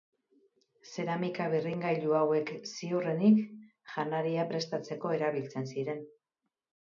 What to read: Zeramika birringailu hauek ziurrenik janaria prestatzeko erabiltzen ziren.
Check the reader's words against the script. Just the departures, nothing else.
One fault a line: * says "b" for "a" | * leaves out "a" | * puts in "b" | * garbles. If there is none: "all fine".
all fine